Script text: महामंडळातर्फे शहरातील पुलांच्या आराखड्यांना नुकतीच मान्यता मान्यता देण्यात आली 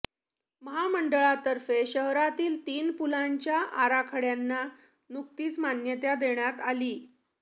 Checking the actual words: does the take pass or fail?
fail